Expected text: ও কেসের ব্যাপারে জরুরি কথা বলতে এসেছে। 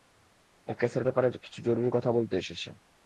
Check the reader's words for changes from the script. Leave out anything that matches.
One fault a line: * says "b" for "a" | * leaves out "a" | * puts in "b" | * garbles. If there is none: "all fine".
* puts in "কিছু"